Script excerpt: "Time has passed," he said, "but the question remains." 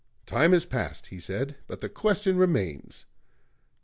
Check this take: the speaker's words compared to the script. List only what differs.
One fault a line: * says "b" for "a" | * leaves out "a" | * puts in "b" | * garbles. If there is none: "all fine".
all fine